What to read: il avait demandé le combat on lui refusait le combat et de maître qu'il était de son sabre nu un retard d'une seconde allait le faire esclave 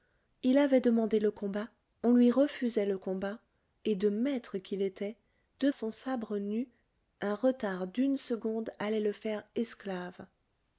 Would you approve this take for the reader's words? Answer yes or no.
yes